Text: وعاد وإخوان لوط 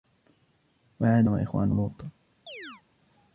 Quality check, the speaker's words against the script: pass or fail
pass